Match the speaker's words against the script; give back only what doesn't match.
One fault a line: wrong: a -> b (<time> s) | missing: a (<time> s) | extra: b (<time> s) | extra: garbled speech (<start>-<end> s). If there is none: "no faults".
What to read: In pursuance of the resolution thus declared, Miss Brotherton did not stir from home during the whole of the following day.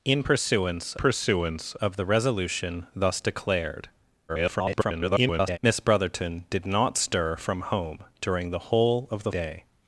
extra: pursuance (0.9 s)
extra: garbled speech (4.3-5.6 s)
missing: following (9.3 s)